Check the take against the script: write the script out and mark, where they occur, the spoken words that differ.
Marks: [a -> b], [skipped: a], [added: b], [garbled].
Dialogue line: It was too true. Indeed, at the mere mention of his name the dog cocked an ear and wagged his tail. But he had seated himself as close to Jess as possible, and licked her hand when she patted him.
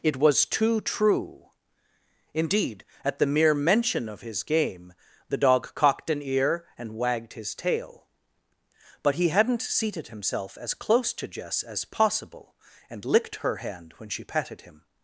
It was too true. Indeed, at the mere mention of his [name -> game] the dog cocked an ear and wagged his tail. But he [had -> hadn't] seated himself as close to Jess as possible, and licked her hand when she patted him.